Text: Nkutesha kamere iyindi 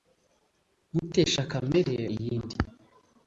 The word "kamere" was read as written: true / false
true